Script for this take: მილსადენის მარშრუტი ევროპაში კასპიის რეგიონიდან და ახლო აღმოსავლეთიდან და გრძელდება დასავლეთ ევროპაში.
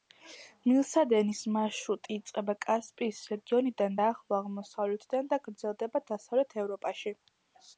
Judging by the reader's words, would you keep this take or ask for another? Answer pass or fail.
fail